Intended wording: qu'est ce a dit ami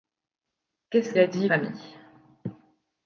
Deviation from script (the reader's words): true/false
false